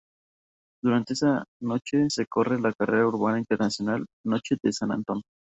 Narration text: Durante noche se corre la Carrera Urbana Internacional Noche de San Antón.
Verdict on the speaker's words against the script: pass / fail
fail